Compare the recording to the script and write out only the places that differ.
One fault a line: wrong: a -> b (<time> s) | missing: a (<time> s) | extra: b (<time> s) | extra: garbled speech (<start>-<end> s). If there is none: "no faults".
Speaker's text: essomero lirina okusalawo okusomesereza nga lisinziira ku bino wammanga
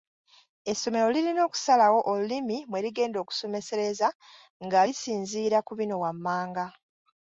extra: olulimi mwe ligenda (2.1 s)